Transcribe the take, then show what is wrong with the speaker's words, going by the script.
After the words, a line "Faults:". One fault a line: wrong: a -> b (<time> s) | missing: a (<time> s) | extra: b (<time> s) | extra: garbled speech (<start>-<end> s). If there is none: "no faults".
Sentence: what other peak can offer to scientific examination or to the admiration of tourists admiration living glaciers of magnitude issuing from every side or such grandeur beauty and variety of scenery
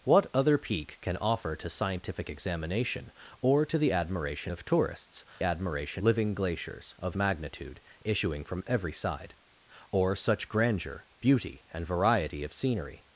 what other peak can offer to scientific examination or to the admiration of tourists admiration living glaciers of magnitude issuing from every side or such grandeur beauty and variety of scenery
Faults:
no faults